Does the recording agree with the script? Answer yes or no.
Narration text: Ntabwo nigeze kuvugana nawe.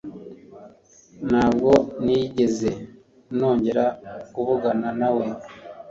no